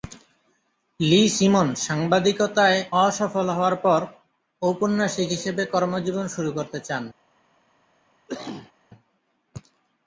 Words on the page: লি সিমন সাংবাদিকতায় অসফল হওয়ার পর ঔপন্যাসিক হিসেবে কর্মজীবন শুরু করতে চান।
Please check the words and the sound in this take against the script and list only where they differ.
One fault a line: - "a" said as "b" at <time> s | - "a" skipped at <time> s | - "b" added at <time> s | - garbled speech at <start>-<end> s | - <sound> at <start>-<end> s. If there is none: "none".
- cough at 8.3-8.7 s